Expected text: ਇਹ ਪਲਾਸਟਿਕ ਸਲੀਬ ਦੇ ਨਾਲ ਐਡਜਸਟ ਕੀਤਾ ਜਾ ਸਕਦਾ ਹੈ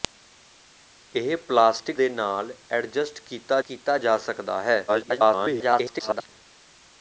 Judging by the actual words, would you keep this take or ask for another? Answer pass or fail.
fail